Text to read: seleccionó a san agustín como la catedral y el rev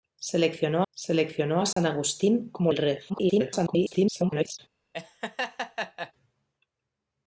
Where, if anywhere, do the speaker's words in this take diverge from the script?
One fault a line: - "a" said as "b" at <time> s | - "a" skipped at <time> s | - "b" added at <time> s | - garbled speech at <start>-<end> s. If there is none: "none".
- "seleccionó" added at 0.9 s
- "la catedral y" skipped at 2.7 s
- garbled speech at 3.1-4.6 s